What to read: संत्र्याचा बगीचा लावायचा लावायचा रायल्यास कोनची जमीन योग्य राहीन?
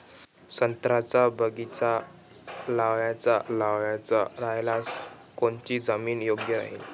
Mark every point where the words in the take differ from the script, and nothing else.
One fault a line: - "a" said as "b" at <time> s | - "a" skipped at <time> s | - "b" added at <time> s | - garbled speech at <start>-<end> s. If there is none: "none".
none